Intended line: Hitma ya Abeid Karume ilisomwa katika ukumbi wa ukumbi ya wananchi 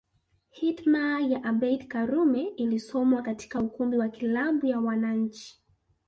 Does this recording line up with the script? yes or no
no